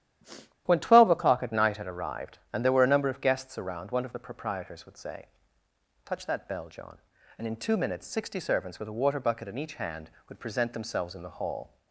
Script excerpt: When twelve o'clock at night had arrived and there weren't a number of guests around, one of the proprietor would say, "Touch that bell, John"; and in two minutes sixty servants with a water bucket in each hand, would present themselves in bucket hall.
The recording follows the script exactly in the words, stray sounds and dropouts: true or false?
false